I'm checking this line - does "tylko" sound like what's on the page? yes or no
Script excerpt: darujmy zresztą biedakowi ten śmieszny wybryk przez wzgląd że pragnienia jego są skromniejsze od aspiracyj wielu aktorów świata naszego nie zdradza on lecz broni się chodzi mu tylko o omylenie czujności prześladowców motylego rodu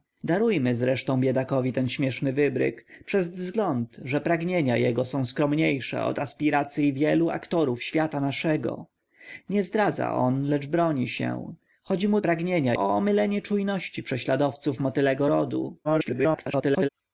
no